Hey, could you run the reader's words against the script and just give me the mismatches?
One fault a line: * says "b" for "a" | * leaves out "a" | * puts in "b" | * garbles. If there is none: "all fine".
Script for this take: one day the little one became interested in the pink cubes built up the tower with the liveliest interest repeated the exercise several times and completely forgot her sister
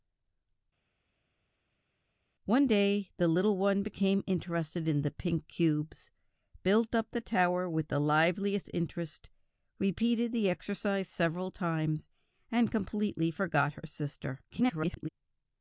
* garbles